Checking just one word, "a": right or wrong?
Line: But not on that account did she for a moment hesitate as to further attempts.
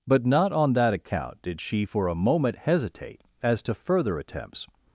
right